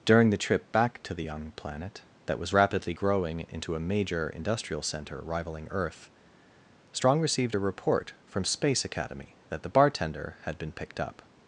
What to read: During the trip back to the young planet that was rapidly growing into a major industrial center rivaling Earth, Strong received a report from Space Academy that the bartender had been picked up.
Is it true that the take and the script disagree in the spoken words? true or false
false